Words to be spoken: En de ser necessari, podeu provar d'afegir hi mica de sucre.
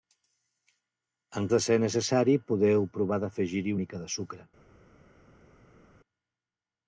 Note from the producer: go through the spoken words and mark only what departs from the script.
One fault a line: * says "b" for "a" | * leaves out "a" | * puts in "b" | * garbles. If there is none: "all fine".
all fine